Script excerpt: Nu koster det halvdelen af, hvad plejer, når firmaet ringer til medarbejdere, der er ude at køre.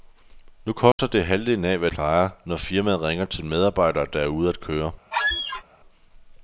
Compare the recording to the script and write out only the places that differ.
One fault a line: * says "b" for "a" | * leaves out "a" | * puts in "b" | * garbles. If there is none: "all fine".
all fine